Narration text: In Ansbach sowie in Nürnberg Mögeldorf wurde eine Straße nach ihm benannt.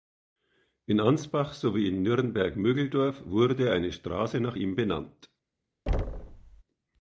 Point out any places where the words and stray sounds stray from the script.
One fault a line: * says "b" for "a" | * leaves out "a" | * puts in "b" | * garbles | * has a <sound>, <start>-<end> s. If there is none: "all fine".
* has a thud, 5.9-6.6 s